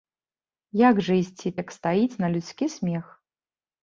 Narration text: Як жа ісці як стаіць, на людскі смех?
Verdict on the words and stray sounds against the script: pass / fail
pass